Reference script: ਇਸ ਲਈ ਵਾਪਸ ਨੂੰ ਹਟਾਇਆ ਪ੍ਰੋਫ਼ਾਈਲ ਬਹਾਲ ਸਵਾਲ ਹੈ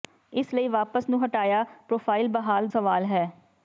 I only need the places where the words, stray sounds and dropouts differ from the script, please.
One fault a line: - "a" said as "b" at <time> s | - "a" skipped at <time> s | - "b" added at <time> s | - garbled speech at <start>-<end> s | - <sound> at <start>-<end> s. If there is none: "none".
none